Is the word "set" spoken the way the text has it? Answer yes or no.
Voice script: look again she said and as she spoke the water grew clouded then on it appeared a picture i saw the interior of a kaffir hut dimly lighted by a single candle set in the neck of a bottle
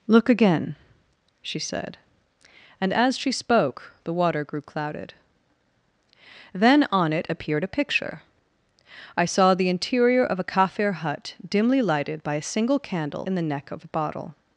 no